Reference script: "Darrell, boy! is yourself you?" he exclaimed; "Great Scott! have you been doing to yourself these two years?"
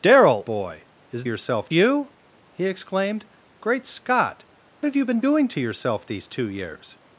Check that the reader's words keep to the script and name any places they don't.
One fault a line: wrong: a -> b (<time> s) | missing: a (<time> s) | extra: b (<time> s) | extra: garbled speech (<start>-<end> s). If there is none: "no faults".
no faults